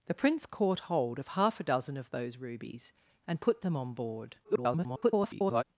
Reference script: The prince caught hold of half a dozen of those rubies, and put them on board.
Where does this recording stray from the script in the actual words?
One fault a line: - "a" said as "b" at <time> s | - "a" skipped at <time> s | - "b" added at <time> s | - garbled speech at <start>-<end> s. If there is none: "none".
- garbled speech at 4.4-5.6 s